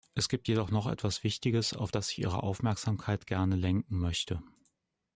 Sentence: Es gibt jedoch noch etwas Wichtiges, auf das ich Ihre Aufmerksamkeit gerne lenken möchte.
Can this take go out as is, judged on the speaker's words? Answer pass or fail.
pass